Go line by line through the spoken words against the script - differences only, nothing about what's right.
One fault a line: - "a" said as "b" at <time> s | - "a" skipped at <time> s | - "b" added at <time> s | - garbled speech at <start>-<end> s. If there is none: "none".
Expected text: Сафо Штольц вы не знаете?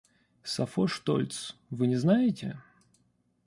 none